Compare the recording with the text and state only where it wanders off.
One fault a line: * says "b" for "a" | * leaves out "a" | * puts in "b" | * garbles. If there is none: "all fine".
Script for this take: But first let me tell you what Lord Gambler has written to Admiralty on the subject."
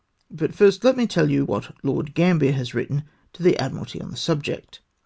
* puts in "the"